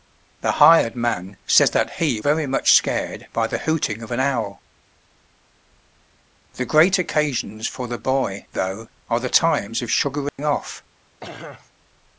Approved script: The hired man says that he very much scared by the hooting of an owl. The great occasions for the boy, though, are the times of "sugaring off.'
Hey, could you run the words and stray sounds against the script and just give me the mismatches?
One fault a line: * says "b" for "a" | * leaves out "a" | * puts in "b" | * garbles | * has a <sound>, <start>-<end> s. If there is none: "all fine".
* has a dropout, 10.3-10.4 s
* has a throat clearing, 11.2-11.7 s